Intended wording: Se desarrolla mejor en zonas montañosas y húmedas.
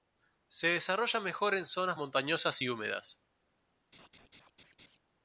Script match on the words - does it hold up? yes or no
yes